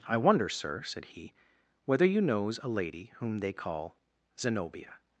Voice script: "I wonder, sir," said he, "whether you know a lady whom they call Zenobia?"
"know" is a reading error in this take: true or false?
true